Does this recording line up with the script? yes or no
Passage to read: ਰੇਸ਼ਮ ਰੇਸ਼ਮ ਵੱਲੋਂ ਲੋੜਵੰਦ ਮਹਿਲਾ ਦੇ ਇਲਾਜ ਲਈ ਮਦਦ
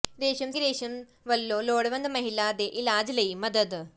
yes